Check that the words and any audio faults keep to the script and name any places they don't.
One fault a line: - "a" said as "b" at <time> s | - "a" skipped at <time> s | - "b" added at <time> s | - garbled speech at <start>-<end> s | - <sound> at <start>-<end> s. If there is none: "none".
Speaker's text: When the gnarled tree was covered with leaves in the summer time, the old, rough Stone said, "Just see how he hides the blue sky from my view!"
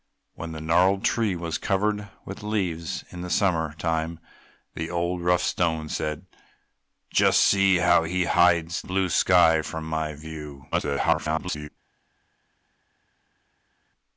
- "the" skipped at 8.8 s
- garbled speech at 10.7-11.7 s